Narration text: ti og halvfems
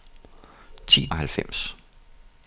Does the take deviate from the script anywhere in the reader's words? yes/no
no